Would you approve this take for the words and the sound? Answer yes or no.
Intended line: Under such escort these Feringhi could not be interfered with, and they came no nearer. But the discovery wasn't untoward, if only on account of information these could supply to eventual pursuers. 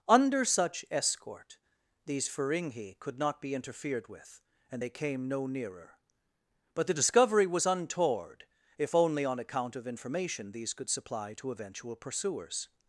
no